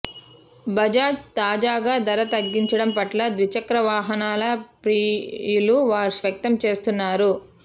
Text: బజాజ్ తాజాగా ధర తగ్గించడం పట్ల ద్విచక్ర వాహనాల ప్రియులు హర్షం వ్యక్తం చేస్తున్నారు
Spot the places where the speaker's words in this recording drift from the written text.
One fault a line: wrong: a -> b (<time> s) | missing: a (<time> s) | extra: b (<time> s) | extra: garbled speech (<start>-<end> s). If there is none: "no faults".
missing: హర్షం (5.8 s)